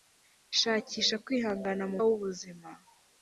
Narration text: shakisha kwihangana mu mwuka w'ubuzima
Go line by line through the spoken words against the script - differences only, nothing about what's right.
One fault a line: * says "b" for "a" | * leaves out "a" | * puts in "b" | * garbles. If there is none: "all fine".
* leaves out "mwuka"